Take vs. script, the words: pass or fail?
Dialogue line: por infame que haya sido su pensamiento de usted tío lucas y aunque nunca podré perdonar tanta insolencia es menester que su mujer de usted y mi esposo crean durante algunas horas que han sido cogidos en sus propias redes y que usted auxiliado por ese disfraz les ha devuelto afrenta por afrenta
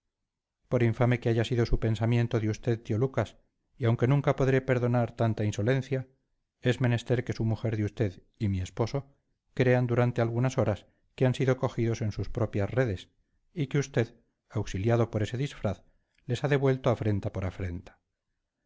pass